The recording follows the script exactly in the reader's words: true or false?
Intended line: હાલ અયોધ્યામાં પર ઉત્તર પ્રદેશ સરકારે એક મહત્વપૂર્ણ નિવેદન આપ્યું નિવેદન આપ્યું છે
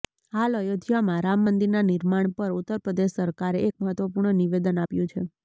false